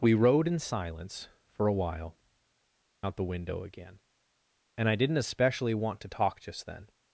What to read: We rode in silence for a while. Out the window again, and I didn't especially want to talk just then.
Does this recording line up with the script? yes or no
yes